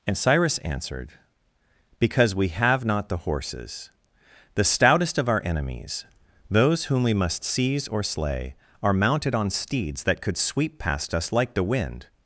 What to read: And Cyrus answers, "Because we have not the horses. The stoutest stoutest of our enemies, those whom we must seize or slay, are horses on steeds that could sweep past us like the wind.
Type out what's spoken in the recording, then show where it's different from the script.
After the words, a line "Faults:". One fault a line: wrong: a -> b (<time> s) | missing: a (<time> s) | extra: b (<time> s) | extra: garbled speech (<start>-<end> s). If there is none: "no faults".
And Cyrus answered, "Because we have not the horses. The stoutest of our enemies, those whom we must seize or slay, are mounted on steeds that could sweep past us like the wind.
Faults:
wrong: answers -> answered (0.6 s)
missing: stoutest (5.2 s)
wrong: horses -> mounted (8.9 s)